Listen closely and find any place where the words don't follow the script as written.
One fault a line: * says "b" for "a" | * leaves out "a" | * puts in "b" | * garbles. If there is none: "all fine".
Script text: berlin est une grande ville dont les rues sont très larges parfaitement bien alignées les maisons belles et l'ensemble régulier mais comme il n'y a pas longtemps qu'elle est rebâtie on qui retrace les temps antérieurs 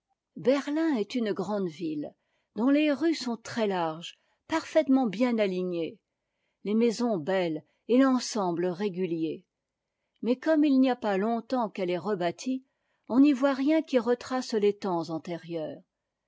* puts in "n'y voit rien"